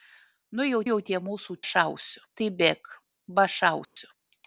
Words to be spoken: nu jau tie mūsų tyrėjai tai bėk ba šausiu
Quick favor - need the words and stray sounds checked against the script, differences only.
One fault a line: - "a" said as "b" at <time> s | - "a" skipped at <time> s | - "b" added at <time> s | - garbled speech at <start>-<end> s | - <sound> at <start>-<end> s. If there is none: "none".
- "jau" added at 0.9 s
- "tyrėjai" said as "šausiu" at 1.7 s
- dropout at 3.8-4.0 s